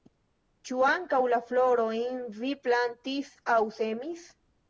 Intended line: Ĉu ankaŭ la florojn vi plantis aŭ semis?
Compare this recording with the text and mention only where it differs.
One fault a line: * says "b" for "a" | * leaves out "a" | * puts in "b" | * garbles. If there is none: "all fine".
all fine